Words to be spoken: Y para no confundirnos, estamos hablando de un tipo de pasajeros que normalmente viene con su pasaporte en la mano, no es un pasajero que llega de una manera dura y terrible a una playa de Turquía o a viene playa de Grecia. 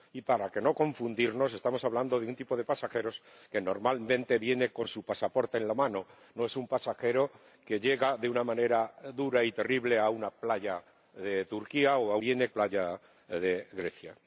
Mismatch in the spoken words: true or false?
false